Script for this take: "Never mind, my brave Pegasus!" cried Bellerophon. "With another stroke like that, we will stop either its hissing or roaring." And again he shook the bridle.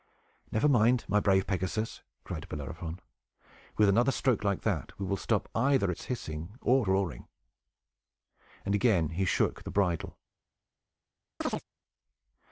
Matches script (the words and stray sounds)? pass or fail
fail